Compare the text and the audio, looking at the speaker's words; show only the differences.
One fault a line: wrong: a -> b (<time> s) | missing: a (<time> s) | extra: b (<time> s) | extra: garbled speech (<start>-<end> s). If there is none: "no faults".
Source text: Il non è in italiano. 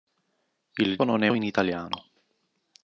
no faults